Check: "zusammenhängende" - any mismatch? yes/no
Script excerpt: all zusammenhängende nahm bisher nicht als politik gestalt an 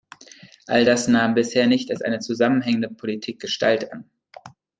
yes